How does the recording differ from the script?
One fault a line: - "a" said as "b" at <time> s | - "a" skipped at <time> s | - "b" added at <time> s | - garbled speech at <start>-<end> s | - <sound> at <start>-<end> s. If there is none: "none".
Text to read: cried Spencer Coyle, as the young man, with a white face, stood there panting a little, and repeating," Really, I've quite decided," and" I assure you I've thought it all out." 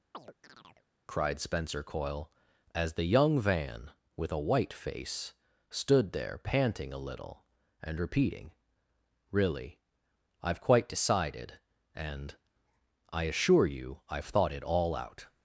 - chirp at 0.1-0.9 s
- "man" said as "van" at 3.4 s